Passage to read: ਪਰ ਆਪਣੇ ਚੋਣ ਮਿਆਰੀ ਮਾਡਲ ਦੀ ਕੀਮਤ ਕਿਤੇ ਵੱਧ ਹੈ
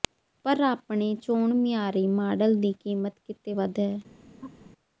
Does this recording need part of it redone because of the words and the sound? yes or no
yes